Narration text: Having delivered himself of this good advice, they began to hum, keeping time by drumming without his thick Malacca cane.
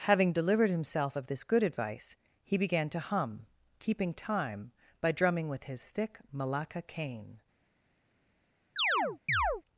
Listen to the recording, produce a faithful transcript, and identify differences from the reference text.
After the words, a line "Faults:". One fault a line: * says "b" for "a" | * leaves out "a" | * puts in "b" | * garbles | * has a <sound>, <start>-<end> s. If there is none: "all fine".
Having delivered himself of this good advice, he began to hum, keeping time by drumming with his thick Malacca cane.
Faults:
* says "he" for "they"
* says "with" for "without"
* has a chirp, 8.8-9.6 s